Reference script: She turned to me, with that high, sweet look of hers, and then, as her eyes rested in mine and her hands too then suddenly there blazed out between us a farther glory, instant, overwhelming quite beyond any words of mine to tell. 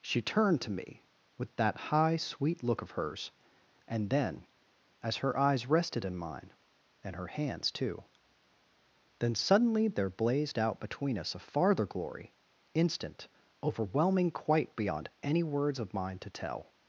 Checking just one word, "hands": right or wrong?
right